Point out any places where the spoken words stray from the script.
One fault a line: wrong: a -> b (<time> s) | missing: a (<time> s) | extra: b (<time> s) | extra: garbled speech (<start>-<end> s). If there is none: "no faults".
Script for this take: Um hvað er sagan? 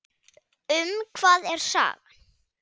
no faults